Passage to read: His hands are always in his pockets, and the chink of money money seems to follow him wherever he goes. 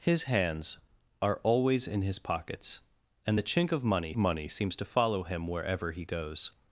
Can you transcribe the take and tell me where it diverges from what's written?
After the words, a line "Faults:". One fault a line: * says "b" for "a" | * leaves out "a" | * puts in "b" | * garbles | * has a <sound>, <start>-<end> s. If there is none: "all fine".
His hands are always in his pockets, and the chink of money money seems to follow him wherever he goes.
Faults:
all fine